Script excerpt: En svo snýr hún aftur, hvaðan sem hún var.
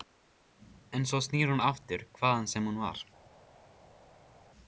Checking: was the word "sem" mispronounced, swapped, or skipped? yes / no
no